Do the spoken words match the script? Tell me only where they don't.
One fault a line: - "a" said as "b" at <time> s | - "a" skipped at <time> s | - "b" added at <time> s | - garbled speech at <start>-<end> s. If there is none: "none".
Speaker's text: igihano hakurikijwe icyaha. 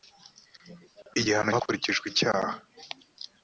none